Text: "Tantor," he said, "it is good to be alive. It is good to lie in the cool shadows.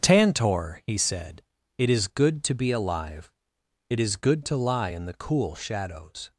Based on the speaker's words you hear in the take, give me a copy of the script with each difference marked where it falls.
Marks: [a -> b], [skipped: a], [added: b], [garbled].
"Tantor," he said, "it is good to be alive. It is good to lie in the cool shadows.